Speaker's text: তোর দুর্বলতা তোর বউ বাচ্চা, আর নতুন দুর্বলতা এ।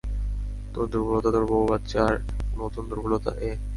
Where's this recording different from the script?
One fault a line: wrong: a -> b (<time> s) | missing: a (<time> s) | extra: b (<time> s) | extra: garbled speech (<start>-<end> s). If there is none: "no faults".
no faults